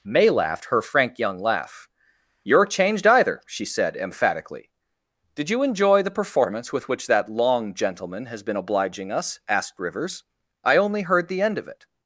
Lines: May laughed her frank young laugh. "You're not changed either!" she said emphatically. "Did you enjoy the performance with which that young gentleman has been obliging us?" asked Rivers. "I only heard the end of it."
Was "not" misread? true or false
true